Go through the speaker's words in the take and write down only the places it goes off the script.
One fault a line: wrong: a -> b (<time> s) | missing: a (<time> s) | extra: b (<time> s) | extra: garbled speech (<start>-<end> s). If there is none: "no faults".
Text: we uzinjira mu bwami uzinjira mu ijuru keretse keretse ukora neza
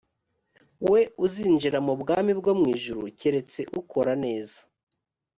wrong: uzinjira -> bwo (2.4 s)
missing: keretse (3.6 s)